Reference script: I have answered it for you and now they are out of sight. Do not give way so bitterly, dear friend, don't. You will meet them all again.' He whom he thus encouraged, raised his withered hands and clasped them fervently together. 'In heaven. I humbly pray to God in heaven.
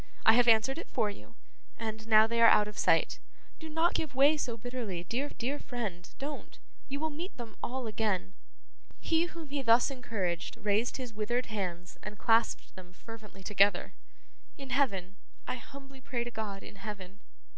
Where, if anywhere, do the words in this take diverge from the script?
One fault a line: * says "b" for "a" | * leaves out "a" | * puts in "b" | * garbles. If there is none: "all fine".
* puts in "dear"